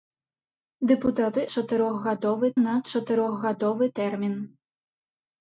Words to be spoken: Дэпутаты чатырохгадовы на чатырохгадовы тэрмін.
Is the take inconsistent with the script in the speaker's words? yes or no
no